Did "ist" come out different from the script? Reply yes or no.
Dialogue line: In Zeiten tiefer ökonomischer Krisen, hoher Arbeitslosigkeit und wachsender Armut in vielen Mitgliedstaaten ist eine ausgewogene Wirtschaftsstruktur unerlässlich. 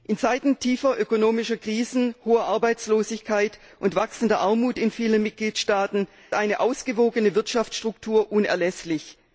yes